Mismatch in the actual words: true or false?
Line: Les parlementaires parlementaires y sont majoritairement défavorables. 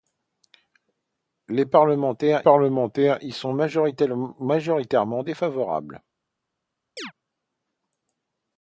false